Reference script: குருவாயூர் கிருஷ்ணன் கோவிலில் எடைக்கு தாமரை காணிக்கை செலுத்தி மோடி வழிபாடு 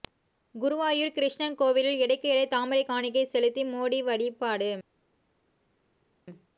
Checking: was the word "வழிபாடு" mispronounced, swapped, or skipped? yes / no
no